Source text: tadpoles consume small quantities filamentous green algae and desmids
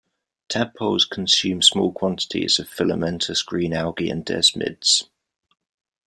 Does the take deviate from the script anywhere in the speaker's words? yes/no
yes